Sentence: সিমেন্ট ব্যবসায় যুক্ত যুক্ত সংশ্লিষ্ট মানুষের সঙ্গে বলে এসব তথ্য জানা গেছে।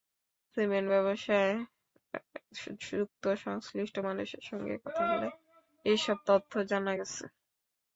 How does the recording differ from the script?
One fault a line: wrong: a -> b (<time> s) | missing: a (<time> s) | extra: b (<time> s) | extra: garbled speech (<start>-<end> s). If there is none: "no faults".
missing: যুক্ত (3.2 s)
extra: কথা (4.8 s)